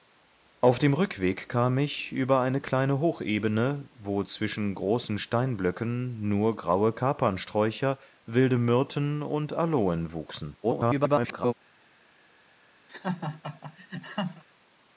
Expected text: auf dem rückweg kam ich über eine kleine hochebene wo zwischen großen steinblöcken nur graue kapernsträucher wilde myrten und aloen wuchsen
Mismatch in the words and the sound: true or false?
true